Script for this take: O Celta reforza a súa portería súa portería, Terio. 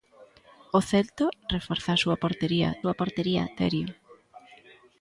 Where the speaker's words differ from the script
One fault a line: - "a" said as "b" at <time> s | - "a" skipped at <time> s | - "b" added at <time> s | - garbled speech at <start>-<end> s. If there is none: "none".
none